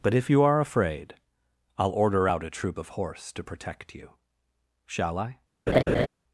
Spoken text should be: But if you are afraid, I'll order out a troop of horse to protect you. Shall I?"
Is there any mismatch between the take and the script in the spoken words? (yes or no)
no